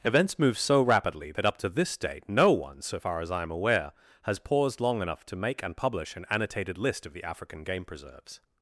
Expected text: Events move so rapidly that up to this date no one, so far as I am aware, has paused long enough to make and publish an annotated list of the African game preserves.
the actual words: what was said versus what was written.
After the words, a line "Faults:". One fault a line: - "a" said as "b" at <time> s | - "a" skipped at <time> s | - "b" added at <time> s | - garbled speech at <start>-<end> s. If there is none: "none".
Events move so rapidly that up to this date no one, so far as I am aware, has paused long enough to make and publish an annotated list of the African game preserves.
Faults:
none